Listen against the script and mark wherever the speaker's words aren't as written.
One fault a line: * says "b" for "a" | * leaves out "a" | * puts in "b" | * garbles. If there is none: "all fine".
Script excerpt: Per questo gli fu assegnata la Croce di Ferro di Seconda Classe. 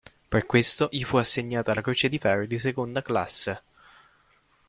all fine